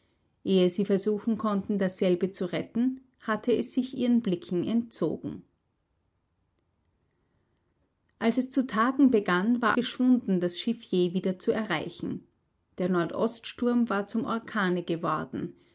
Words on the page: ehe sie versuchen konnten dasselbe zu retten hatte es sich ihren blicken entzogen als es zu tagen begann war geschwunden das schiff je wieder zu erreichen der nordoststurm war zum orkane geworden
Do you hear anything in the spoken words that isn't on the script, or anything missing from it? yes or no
no